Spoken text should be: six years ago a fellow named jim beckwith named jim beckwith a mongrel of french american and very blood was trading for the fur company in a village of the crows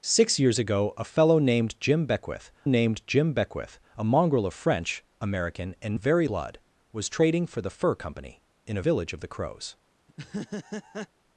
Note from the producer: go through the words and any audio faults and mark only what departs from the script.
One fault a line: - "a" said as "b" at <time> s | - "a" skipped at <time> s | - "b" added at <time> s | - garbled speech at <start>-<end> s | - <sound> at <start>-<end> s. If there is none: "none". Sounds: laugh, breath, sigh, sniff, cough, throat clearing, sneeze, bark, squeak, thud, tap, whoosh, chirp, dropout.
- laugh at 10.1-11.1 s